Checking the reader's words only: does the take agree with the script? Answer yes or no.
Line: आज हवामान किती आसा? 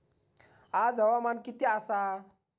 yes